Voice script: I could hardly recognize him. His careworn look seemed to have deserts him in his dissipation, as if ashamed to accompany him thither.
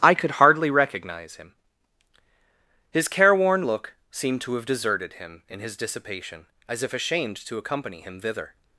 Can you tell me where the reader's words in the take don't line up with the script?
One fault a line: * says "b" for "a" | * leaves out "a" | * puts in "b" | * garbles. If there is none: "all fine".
* says "deserted" for "deserts"